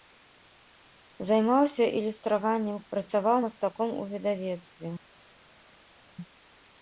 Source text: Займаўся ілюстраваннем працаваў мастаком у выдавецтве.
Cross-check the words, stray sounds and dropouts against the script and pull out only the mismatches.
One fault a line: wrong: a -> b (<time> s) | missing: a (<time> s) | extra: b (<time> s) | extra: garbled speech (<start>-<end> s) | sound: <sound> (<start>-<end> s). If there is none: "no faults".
no faults